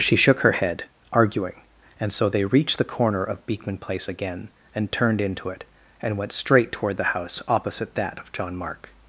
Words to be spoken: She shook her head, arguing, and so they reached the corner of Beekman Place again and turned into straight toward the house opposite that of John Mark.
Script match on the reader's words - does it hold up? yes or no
no